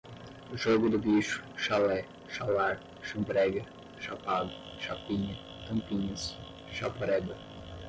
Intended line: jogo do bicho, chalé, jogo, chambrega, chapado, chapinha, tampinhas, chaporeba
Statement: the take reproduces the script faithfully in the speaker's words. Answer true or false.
false